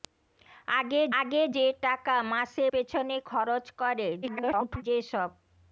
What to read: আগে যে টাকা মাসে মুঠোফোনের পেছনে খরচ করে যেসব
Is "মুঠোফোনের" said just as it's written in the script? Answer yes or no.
no